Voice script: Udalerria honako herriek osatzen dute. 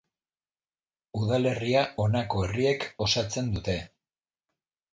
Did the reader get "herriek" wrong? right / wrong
right